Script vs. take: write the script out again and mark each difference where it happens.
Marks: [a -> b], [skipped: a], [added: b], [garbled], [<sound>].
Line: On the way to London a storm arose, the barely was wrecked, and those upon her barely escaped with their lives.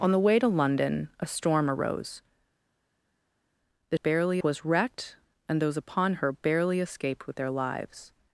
On the way to London a storm arose, the barely was wrecked, and those upon her barely escaped with their lives.